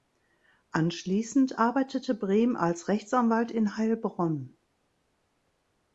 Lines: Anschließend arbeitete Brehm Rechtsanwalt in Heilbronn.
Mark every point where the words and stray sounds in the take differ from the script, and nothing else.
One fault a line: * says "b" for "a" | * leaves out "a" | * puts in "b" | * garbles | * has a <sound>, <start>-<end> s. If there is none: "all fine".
* puts in "als"